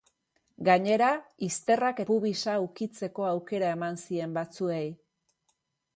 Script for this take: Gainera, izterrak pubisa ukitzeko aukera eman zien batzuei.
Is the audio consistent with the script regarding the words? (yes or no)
yes